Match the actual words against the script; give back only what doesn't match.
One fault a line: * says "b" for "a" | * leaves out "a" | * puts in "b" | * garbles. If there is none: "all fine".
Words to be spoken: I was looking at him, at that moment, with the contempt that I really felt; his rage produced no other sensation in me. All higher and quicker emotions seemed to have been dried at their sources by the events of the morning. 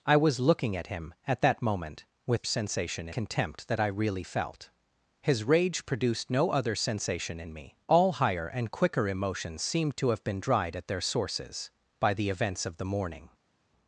* says "sensation" for "the"